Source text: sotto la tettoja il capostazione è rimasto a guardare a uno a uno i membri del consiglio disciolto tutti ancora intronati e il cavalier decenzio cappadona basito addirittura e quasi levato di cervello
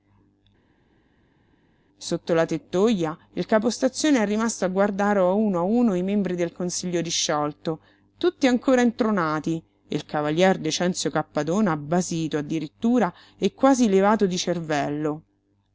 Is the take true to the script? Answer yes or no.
yes